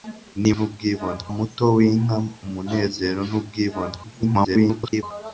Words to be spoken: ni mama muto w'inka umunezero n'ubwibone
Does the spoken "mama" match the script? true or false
false